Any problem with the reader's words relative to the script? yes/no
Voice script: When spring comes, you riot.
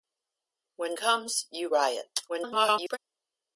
yes